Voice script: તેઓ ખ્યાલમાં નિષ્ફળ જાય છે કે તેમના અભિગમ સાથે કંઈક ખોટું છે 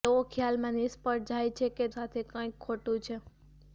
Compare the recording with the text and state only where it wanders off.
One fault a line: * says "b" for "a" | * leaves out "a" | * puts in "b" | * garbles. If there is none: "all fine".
* leaves out "તેમના અભિગમ"